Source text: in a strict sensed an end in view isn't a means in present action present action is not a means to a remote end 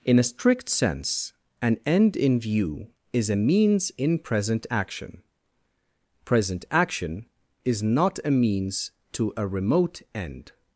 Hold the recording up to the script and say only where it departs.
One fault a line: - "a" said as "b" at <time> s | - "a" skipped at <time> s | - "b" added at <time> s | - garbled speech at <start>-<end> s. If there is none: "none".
- "sensed" said as "sense" at 0.7 s
- "isn't" said as "is" at 3.1 s